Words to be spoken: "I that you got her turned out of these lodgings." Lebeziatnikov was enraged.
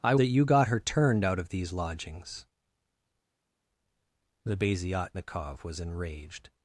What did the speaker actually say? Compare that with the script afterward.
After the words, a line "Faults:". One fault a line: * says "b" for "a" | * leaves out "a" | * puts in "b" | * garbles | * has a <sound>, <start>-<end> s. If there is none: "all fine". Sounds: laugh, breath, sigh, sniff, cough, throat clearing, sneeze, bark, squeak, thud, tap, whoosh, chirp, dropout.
"I that you got her turned out of these lodgings." Lebeziatnikov was enraged.
Faults:
all fine